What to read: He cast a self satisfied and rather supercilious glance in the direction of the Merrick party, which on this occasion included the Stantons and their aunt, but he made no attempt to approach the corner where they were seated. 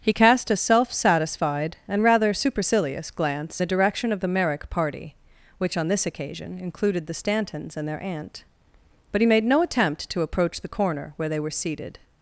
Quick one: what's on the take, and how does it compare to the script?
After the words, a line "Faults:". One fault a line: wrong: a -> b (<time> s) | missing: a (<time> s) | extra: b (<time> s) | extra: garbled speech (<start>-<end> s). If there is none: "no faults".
He cast a self satisfied and rather supercilious glance the direction of the Merrick party, which on this occasion included the Stantons and their aunt, but he made no attempt to approach the corner where they were seated.
Faults:
missing: in (3.6 s)